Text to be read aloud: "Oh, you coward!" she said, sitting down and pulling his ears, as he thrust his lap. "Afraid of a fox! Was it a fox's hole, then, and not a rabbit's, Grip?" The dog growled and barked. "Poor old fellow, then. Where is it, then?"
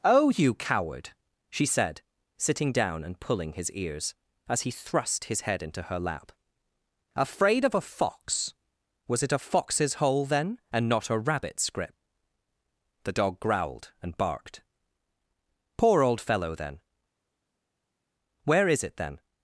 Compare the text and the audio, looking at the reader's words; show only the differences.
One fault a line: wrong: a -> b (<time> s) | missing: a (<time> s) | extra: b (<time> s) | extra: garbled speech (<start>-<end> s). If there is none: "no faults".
extra: head into her (5.4 s)